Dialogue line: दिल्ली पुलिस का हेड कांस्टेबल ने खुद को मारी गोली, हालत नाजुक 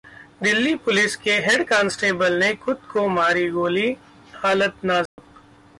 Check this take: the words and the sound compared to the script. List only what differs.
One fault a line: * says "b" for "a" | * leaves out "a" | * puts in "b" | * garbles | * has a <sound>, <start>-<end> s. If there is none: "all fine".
* says "के" for "का"
* has a dropout, 5.1-5.2 s